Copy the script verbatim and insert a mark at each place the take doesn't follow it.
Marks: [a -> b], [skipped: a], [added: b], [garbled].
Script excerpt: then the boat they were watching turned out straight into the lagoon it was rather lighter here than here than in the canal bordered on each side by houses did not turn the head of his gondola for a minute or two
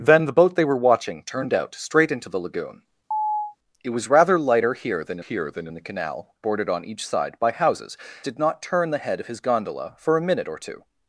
then the boat they were watching turned out straight into the lagoon it was rather lighter here than here than in the canal bordered on each side by houses did not turn the head of his gondola for a minute or two